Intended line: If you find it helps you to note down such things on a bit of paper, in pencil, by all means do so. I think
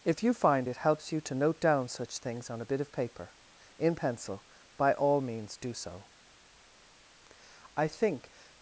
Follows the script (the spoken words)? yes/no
yes